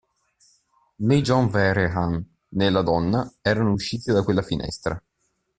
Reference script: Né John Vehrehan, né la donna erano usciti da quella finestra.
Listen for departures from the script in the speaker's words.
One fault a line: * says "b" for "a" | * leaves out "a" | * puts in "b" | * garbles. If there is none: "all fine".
all fine